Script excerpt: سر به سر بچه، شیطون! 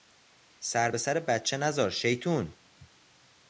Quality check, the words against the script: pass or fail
fail